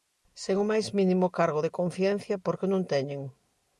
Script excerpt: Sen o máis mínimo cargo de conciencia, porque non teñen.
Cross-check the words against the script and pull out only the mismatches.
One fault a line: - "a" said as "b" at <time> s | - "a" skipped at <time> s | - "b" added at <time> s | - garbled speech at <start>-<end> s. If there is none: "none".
none